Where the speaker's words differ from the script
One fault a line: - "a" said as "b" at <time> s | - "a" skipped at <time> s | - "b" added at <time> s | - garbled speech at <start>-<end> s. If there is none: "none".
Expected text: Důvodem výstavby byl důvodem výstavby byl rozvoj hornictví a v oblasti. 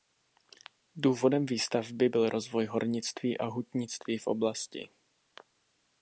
- "důvodem výstavby byl" skipped at 2.3 s
- "hutnictví" added at 3.4 s